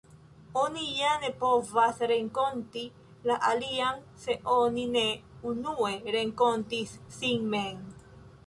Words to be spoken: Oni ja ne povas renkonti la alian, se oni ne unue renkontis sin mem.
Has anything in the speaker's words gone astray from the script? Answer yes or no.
no